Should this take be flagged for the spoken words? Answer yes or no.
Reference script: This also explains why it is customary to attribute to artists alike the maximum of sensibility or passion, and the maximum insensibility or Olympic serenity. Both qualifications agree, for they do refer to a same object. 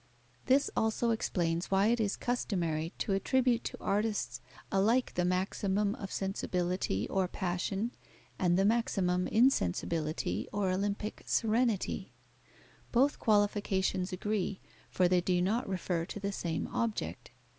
yes